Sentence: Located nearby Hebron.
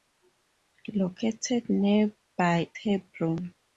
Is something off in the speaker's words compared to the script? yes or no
no